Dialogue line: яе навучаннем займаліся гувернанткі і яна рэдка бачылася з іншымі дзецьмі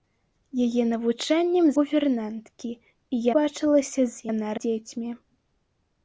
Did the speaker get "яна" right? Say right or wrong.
wrong